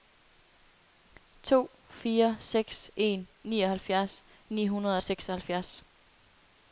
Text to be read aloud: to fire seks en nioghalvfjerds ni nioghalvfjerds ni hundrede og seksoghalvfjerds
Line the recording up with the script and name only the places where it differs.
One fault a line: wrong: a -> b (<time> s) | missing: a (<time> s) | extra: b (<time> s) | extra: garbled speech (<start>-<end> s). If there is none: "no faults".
missing: nioghalvfjerds ni (4.7 s)